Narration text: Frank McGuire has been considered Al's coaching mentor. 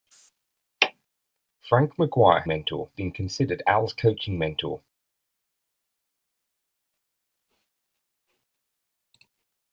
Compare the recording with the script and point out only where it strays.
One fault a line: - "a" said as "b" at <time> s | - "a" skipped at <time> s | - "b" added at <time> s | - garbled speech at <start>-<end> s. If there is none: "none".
- "has" said as "mentor" at 2.5 s